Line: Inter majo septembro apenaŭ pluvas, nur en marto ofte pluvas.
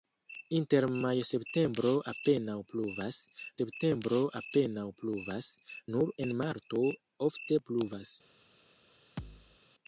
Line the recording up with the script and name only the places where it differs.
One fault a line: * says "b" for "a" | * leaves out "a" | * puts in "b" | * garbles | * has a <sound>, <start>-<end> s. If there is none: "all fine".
* puts in "septembro apenaŭ pluvas"
* has a thud, 9.2-9.6 s